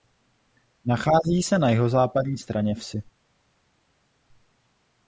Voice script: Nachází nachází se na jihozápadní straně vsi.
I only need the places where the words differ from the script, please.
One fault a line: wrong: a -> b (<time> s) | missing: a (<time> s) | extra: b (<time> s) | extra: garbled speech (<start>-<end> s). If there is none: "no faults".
missing: nachází (1.4 s)